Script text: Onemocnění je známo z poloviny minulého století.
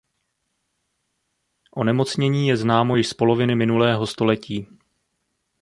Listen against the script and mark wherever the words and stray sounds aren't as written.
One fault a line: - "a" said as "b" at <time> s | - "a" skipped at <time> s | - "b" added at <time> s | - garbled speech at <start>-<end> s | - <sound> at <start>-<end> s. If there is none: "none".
- "již" added at 2.9 s